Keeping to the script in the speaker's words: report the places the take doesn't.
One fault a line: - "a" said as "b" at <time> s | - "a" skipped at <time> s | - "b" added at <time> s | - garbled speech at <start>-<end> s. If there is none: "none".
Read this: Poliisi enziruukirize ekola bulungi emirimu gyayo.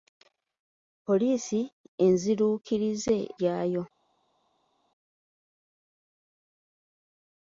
- "ekola bulungi emirimu" skipped at 3.2 s